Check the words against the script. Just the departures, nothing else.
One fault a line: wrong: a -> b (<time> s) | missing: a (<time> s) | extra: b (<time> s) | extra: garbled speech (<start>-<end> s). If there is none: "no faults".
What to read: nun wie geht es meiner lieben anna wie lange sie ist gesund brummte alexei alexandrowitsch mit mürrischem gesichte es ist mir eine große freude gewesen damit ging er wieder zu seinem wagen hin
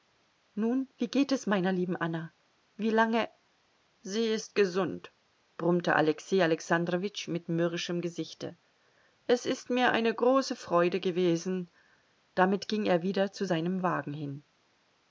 no faults